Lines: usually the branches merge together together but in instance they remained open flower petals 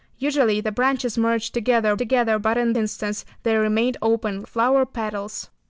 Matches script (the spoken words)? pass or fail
pass